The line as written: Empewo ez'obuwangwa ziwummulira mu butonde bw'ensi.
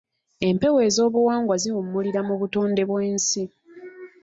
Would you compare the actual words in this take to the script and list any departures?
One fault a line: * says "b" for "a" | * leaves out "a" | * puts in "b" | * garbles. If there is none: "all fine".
all fine